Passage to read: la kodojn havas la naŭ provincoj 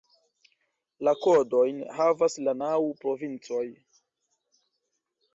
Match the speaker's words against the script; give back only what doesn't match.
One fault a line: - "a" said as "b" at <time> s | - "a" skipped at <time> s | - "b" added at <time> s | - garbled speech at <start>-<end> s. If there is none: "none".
none